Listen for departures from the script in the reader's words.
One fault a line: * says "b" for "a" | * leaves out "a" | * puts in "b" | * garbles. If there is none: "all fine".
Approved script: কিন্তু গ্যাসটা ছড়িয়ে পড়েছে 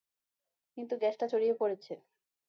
all fine